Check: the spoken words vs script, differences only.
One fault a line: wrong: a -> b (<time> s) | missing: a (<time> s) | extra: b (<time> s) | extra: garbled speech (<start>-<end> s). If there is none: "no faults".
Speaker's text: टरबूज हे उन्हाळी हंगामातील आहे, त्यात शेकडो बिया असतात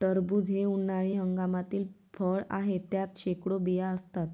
extra: फळ (2.1 s)